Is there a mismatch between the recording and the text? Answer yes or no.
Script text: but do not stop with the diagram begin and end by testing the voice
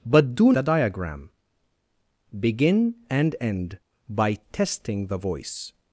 yes